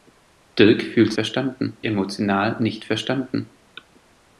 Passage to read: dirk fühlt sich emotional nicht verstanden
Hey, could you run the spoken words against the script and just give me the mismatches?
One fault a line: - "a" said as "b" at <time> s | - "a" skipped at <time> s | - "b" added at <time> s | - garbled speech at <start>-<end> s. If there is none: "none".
- "sich" said as "verstanden" at 1.1 s